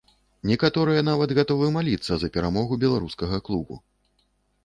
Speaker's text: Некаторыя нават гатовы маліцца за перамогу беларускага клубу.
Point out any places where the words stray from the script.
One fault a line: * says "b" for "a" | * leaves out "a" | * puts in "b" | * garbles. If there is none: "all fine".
all fine